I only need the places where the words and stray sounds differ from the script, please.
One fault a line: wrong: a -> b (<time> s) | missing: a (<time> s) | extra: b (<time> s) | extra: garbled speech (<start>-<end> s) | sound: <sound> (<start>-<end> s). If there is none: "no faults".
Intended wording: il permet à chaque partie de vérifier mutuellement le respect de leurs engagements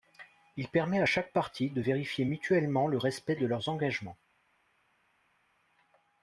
no faults